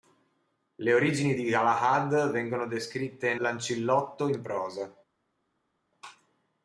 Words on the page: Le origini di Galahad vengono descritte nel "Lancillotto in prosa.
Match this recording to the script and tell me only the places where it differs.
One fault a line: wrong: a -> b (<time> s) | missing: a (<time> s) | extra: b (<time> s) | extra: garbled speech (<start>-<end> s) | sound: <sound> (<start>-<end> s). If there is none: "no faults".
missing: nel (3.3 s)